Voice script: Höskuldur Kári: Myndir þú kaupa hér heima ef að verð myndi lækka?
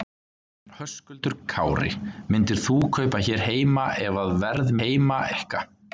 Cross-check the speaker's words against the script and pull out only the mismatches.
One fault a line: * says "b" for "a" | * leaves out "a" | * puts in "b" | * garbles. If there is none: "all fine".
* says "heima" for "myndi"